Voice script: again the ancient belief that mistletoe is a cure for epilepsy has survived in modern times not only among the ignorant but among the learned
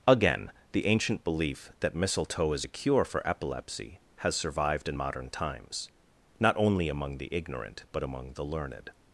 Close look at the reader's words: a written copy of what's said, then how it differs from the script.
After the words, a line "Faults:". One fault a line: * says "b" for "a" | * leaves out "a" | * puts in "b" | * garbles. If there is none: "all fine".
again the ancient belief that mistletoe is a cure for epilepsy has survived in modern times not only among the ignorant but among the learned
Faults:
all fine